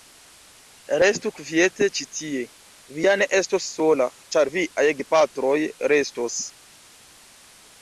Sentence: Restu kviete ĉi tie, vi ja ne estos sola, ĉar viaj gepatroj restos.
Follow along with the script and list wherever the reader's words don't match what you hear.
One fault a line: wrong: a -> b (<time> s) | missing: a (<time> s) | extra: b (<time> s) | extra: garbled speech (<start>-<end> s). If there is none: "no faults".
no faults